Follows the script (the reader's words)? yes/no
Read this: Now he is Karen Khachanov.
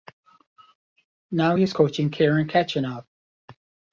no